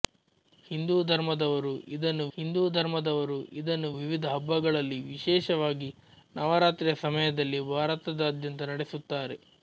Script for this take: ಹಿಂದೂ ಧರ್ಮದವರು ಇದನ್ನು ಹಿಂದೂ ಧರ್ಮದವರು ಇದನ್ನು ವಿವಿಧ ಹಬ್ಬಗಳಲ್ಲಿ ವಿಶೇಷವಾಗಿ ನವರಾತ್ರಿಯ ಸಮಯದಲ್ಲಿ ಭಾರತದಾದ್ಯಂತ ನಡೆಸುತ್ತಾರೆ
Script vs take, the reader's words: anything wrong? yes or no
no